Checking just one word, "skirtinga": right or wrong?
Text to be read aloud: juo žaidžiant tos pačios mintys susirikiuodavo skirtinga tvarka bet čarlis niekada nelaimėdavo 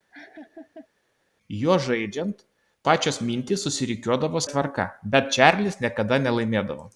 wrong